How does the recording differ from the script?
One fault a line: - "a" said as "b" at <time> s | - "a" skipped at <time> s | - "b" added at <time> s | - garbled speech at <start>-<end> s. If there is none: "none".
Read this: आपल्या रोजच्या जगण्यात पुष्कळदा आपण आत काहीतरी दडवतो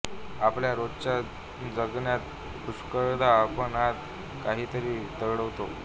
none